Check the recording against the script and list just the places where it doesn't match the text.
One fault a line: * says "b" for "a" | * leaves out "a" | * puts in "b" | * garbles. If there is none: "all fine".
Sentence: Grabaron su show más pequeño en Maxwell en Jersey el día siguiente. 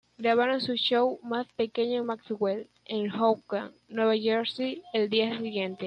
* puts in "Hoboken Nueva"